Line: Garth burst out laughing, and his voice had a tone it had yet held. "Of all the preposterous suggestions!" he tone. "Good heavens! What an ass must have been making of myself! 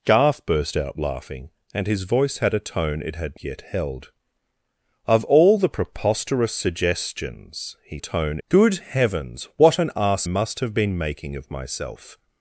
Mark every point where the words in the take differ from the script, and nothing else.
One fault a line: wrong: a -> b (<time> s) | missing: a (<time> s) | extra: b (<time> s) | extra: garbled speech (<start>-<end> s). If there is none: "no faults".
no faults